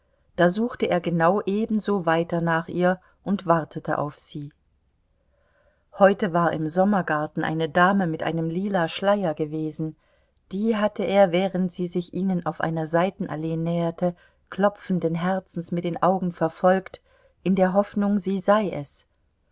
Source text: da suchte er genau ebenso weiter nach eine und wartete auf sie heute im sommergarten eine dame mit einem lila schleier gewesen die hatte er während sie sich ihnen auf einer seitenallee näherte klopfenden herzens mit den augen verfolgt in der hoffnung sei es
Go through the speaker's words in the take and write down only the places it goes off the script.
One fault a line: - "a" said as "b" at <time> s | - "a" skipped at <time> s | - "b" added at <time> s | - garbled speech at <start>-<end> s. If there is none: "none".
- "eine" said as "ihr" at 2.7 s
- "war" added at 6.3 s
- "sie" added at 18.2 s